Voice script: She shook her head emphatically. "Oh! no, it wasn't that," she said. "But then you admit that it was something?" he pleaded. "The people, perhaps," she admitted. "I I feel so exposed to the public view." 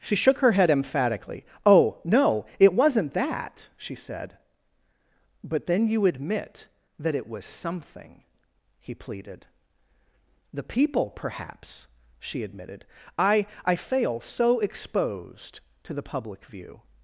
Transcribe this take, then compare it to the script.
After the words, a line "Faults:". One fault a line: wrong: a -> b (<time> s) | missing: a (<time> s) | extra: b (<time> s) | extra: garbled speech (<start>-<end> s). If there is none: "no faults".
She shook her head emphatically. "Oh! no, it wasn't that," she said. "But then you admit that it was something?" he pleaded. "The people, perhaps," she admitted. "I I fail so exposed to the public view."
Faults:
wrong: feel -> fail (13.8 s)